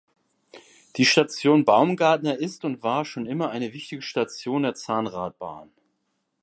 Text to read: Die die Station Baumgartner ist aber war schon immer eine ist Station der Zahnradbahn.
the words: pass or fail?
fail